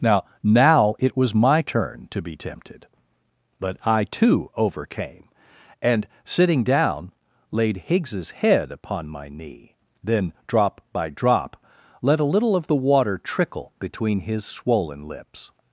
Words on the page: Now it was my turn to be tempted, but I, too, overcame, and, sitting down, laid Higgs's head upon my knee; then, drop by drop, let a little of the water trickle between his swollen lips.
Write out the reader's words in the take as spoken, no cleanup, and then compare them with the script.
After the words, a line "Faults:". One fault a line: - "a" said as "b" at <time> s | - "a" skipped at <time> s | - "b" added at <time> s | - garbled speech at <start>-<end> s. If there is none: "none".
Now now it was my turn to be tempted, but I, too, overcame, and, sitting down, laid Higgs's head upon my knee; then, drop by drop, let a little of the water trickle between his swollen lips.
Faults:
- "now" added at 0.4 s